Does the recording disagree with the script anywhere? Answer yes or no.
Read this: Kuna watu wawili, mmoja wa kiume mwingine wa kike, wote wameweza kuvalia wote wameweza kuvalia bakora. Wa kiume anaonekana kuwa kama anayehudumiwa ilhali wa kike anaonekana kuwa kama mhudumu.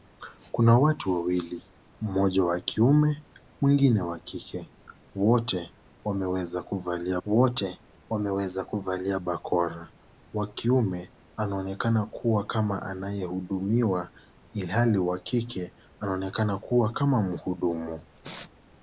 no